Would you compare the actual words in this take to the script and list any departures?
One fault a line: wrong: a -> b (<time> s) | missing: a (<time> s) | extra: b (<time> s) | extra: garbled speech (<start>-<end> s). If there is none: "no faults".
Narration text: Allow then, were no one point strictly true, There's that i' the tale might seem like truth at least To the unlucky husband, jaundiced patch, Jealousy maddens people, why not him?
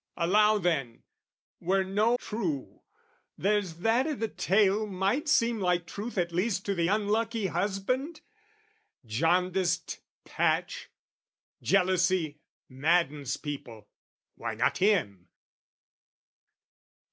missing: one point strictly (2.1 s)